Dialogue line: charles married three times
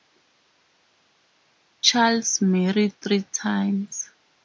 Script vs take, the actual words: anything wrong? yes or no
no